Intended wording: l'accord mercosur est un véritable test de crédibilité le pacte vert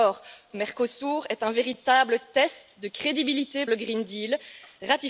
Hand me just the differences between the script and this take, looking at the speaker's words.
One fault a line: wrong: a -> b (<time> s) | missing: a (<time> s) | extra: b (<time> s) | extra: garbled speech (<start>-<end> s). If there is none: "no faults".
no faults